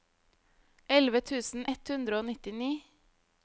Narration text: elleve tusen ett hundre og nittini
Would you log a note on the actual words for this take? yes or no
no